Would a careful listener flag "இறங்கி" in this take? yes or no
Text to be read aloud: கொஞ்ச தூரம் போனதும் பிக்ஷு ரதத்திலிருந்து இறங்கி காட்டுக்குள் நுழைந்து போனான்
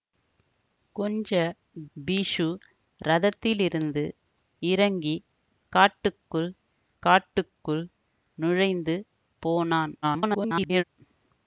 no